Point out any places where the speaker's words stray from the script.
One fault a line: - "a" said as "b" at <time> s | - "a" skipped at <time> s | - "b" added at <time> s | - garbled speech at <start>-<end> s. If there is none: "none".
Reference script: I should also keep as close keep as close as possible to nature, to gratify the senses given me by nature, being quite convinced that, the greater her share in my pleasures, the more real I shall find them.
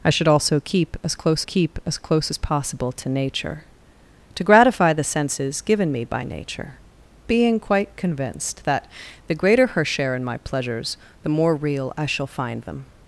none